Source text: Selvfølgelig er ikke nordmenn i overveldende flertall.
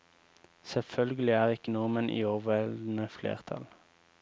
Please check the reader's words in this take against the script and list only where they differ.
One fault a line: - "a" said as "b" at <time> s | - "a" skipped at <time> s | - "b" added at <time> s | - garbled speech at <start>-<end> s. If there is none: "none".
none